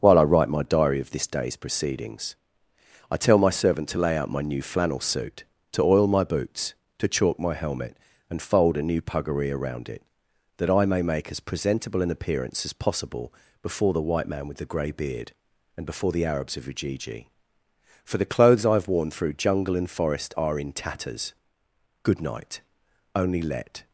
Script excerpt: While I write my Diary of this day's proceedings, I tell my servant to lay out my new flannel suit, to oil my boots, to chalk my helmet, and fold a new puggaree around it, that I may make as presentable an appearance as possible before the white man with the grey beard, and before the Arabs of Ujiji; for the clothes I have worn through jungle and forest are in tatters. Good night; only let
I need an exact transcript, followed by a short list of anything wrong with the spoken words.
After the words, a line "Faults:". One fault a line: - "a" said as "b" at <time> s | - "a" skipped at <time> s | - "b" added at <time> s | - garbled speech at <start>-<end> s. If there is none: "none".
While I write my Diary of this day's proceedings, I tell my servant to lay out my new flannel suit, to oil my boots, to chalk my helmet, and fold a new puggaree around it, that I may make as presentable an appearance as possible before the white man with the grey beard, and before the Arabs of Ujiji; for the clothes I have worn through jungle and forest are in tatters. Good night; only let
Faults:
none